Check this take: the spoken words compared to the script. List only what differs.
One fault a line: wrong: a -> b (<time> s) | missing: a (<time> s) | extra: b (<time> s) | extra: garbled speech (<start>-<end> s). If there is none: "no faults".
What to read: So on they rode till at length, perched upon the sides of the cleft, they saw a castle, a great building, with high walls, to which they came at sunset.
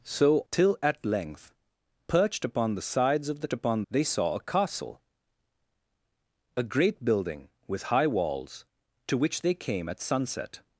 missing: on they rode (0.4 s)
wrong: cleft -> upon (3.5 s)